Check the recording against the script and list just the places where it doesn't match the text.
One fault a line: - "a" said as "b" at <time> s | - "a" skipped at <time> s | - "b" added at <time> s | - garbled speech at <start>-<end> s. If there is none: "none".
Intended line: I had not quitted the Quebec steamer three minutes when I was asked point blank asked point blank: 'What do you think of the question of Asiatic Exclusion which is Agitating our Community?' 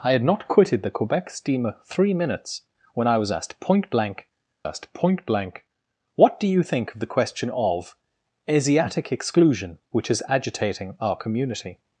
none